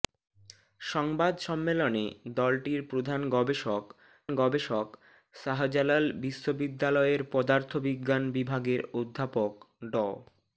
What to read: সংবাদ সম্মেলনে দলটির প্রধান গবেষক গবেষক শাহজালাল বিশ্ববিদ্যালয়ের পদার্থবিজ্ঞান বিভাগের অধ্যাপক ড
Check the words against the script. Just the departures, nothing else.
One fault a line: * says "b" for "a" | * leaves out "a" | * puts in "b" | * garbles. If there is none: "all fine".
all fine